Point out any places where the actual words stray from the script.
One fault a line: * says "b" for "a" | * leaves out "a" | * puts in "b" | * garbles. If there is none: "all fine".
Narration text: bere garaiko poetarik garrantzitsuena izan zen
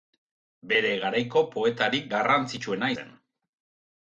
* leaves out "izan"